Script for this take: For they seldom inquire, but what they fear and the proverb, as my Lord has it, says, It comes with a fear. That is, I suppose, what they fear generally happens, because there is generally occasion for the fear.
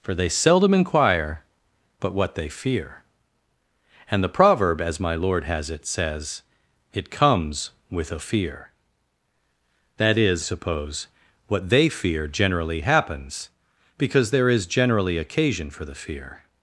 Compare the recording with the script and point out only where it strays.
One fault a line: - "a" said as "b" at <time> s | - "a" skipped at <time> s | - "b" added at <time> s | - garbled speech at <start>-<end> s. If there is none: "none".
- "I" skipped at 10.4 s